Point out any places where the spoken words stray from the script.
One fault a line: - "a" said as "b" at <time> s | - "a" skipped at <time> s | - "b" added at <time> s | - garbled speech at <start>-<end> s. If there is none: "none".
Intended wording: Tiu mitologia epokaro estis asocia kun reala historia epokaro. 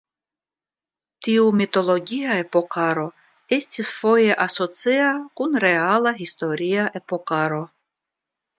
- "foje" added at 4.0 s